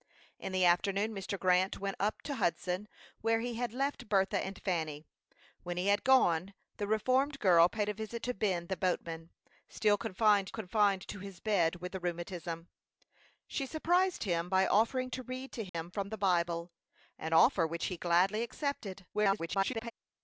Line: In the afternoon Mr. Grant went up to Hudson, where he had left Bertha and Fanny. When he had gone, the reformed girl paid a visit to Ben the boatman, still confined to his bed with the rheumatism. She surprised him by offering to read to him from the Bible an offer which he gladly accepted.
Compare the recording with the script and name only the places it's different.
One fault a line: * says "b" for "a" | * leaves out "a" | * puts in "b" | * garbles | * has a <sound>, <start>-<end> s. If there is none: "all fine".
* puts in "confined"
* has a dropout, 15.7-15.7 s
* garbles